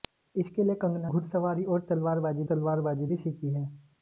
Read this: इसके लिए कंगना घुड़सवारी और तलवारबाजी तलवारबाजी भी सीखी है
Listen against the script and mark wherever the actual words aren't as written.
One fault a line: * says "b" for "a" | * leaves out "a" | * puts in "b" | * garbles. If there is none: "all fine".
all fine